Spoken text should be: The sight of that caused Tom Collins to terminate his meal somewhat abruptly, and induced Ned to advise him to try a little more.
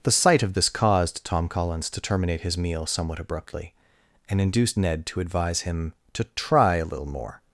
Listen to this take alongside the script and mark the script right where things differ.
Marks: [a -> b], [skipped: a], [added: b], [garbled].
The sight of [that -> this] caused Tom Collins to terminate his meal somewhat abruptly, and induced Ned to advise him to try a little more.